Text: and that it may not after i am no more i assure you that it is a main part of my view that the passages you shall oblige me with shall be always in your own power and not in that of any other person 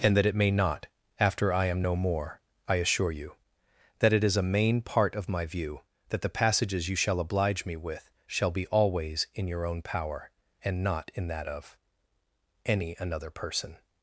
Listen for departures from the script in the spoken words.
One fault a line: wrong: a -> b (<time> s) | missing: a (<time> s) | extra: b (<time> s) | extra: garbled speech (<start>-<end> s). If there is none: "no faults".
wrong: other -> another (13.0 s)